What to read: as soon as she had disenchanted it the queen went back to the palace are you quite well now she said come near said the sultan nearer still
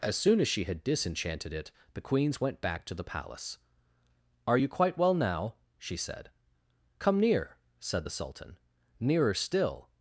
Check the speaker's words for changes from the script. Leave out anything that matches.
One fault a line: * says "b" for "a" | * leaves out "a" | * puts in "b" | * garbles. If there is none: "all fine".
* says "queens" for "queen"